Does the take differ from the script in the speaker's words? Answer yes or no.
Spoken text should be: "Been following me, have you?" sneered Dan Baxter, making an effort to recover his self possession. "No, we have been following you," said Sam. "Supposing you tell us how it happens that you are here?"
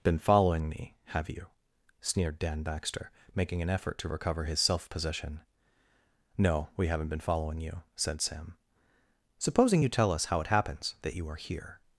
yes